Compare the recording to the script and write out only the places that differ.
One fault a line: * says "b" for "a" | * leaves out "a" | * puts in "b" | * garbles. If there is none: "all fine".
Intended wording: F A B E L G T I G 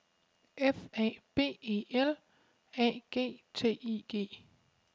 * puts in "A"